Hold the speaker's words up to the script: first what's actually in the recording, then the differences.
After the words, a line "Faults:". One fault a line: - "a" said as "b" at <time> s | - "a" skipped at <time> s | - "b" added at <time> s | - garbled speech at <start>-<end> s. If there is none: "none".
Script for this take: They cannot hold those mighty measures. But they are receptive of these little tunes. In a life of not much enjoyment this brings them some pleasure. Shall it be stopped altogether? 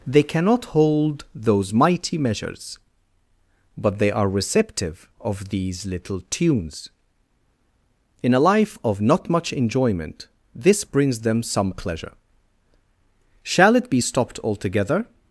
They cannot hold those mighty measures. But they are receptive of these little tunes. In a life of not much enjoyment this brings them some pleasure. Shall it be stopped altogether?
Faults:
none